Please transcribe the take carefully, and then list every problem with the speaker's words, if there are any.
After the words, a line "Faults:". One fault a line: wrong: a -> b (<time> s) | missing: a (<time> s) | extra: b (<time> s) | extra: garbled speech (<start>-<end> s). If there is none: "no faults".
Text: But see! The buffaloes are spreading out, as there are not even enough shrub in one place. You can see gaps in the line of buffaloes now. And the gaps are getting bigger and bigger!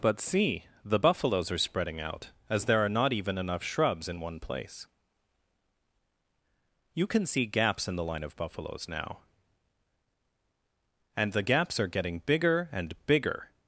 But see! The buffaloes are spreading out, as there are not even enough shrubs in one place. You can see gaps in the line of buffaloes now. And the gaps are getting bigger and bigger!
Faults:
wrong: shrub -> shrubs (3.6 s)